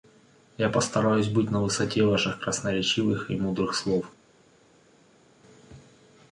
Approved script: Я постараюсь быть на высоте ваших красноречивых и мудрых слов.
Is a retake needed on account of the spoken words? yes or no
no